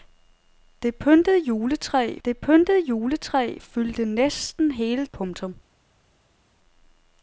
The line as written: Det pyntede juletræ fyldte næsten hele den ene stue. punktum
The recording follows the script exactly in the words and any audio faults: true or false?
false